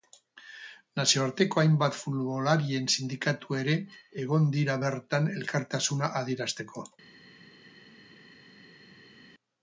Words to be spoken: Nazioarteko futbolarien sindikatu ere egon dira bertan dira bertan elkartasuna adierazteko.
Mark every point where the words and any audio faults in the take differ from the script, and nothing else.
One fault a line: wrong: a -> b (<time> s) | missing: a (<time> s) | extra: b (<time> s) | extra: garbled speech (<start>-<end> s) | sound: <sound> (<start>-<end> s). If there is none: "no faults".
extra: hainbat (1.6 s)
missing: dira bertan (5.4 s)